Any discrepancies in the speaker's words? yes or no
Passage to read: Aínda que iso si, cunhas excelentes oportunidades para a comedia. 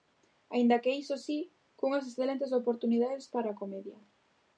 no